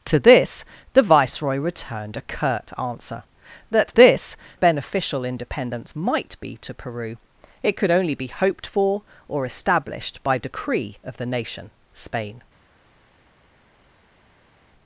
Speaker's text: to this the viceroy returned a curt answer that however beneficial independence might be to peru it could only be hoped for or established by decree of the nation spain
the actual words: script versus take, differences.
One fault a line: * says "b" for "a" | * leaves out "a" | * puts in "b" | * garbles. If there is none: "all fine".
* says "this" for "however"